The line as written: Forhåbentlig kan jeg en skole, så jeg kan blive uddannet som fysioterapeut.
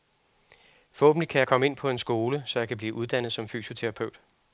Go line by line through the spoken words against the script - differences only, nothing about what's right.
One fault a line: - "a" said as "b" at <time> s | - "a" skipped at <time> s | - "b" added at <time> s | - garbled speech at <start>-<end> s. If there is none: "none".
- "komme ind på" added at 1.5 s